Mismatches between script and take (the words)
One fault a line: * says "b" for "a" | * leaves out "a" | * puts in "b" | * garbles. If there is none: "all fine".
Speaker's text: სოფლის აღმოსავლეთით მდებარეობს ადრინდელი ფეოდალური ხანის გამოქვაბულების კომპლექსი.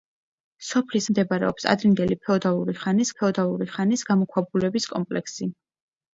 * leaves out "აღმოსავლეთით"
* puts in "ფეოდალური ხანის"